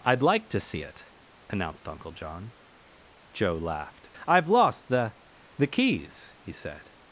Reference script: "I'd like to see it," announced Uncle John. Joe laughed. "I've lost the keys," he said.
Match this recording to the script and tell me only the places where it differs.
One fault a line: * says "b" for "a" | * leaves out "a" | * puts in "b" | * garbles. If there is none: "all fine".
* puts in "the"